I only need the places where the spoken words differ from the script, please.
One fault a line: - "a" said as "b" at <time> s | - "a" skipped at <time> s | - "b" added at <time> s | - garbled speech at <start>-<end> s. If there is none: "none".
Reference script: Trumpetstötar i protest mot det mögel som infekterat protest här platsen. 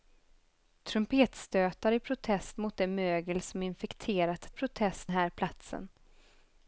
none